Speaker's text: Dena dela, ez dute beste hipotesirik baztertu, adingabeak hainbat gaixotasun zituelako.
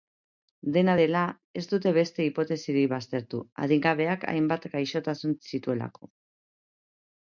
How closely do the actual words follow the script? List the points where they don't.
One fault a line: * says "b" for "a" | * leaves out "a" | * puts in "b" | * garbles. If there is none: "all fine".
all fine